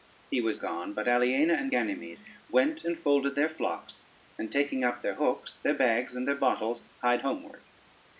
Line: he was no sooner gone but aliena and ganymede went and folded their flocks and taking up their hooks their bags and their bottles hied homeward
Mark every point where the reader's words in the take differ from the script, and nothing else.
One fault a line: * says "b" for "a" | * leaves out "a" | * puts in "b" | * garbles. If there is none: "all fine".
* leaves out "no sooner"